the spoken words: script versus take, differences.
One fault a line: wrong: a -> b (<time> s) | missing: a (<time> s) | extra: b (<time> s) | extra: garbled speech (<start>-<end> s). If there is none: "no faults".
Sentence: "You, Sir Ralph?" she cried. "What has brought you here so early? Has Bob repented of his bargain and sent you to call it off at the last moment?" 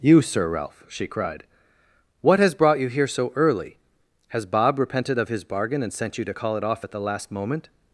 no faults